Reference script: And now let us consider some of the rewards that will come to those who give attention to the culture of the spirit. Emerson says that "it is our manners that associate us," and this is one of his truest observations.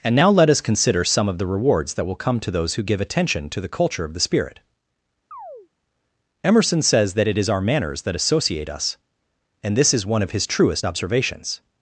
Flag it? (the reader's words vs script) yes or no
no